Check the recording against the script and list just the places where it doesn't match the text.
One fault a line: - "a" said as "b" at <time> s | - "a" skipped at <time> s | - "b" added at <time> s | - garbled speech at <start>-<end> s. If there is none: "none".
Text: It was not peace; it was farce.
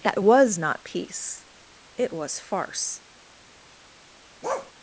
- "It" said as "That" at 0.0 s